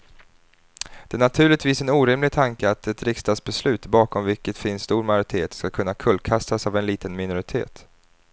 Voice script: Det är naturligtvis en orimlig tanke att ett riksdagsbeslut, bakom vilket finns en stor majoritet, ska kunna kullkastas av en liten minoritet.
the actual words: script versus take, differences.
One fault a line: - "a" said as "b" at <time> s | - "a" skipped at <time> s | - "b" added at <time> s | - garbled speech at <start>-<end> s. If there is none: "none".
- "en" skipped at 4.8 s